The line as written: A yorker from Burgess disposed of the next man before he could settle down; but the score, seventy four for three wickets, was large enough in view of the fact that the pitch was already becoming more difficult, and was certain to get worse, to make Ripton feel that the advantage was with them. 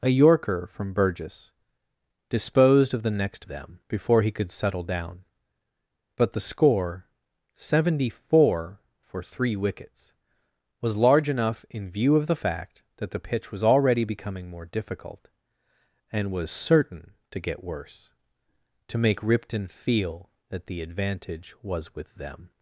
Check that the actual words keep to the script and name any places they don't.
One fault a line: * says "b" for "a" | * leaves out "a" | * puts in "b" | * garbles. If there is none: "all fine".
* says "them" for "man"